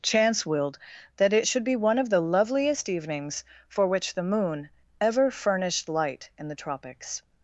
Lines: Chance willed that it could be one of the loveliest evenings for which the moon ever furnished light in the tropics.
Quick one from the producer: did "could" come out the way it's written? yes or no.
no